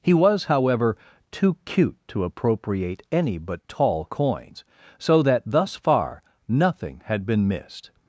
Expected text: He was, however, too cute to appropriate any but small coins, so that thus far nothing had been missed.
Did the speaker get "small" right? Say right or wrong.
wrong